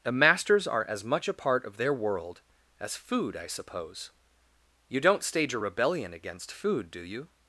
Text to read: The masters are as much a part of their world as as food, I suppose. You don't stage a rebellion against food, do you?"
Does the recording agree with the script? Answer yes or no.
no